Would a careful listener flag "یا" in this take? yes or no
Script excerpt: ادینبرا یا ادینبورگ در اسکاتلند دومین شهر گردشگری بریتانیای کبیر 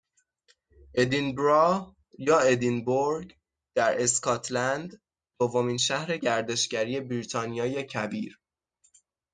no